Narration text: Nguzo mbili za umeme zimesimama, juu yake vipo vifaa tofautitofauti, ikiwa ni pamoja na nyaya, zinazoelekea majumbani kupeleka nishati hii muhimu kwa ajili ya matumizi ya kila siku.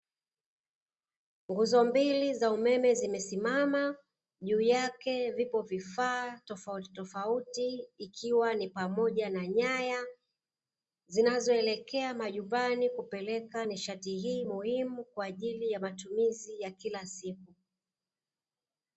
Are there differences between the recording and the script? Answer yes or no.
no